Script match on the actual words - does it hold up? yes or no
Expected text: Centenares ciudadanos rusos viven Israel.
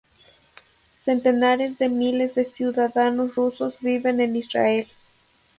no